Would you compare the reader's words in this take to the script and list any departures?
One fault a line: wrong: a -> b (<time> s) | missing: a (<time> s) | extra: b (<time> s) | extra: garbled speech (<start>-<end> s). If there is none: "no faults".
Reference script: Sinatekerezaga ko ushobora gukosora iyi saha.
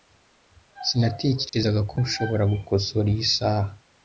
no faults